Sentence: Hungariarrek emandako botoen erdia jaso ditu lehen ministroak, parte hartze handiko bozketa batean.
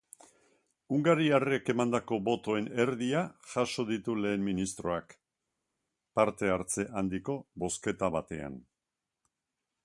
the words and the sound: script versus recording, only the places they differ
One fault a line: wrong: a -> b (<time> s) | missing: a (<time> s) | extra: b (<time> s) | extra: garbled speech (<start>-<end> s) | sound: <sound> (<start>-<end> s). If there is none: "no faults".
no faults